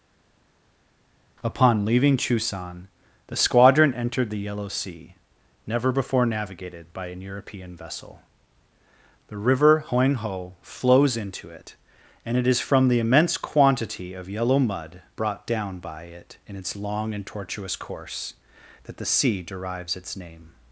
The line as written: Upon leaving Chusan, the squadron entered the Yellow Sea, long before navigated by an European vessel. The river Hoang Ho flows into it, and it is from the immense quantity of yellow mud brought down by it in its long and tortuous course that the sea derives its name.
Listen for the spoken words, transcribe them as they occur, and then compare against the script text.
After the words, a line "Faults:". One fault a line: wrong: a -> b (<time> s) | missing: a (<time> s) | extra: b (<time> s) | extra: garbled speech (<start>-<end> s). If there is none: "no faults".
Upon leaving Chusan, the squadron entered the Yellow Sea, never before navigated by an European vessel. The river Hoang Ho flows into it, and it is from the immense quantity of yellow mud brought down by it in its long and tortuous course that the sea derives its name.
Faults:
wrong: long -> never (5.7 s)